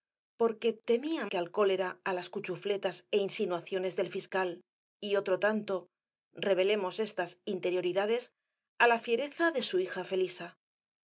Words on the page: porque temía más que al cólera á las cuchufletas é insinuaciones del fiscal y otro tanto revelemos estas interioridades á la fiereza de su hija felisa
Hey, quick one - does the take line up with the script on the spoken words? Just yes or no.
no